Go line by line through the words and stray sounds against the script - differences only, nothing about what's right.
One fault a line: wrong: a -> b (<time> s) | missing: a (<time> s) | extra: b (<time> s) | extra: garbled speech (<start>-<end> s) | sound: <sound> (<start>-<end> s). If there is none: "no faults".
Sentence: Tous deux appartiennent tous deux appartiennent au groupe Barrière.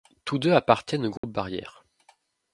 missing: tous deux appartiennent (1.1 s)
sound: dropout (1.2-1.2 s)